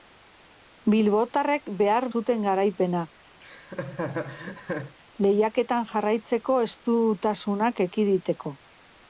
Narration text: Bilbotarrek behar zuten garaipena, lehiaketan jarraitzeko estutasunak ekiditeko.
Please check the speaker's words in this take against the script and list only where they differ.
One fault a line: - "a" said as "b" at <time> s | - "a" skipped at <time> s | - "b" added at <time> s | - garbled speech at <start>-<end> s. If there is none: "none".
none